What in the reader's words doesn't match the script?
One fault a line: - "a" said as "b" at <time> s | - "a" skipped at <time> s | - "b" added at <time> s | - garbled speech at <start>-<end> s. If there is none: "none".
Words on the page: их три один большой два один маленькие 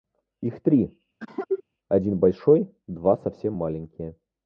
- "один" said as "совсем" at 3.2 s